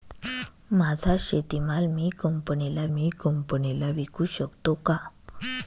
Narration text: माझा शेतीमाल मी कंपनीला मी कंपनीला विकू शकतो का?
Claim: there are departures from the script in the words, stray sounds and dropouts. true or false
false